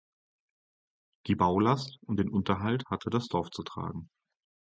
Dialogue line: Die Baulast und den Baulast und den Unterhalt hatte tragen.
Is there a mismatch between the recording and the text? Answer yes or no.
yes